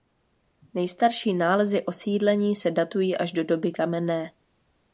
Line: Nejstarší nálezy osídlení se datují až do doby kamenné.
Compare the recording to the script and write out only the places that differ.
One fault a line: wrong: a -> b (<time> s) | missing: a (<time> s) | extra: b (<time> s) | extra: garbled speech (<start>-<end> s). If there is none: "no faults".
no faults